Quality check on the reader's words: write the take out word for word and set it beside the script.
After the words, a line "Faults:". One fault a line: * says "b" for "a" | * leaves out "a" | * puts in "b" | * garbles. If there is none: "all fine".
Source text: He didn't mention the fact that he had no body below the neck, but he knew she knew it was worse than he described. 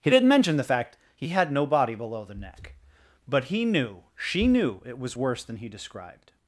He didn't mention the fact he had no body below the neck, but he knew she knew it was worse than he described.
Faults:
* leaves out "that"